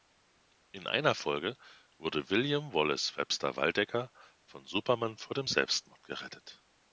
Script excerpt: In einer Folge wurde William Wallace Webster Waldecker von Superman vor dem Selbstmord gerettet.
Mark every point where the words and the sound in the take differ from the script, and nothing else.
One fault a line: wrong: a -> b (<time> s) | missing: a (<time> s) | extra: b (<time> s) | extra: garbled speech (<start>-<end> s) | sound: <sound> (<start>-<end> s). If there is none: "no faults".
no faults